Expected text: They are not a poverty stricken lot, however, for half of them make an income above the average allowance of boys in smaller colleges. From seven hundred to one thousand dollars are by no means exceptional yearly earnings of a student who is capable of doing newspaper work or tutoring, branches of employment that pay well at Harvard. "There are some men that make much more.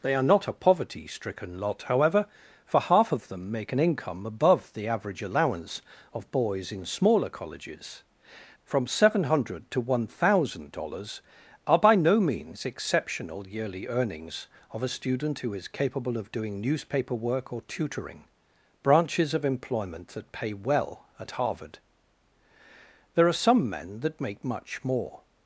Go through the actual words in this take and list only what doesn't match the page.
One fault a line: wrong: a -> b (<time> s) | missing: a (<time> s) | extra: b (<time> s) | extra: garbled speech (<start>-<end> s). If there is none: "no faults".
no faults